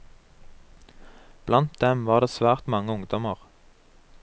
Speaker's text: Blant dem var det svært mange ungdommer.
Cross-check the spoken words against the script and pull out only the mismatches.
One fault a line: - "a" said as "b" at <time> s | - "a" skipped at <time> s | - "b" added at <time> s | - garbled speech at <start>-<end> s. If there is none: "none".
none